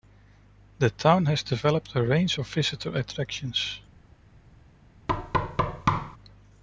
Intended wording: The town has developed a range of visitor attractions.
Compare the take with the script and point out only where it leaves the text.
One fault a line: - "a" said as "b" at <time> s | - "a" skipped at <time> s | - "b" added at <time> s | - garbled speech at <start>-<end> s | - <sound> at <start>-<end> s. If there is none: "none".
- thud at 5.1-6.2 s